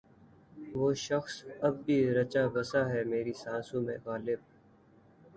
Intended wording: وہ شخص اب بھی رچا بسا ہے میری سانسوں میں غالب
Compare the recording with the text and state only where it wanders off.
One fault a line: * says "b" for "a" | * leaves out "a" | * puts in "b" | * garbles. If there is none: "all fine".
all fine